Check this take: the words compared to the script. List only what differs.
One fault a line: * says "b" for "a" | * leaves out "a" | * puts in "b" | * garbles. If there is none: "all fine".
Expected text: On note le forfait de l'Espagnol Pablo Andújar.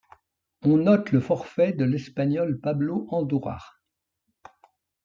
all fine